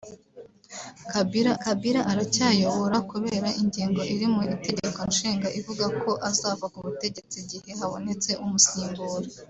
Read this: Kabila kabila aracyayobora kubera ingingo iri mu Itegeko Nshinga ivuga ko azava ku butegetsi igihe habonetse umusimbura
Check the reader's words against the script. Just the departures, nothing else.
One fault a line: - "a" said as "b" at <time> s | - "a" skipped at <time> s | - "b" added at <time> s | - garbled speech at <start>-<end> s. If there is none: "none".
none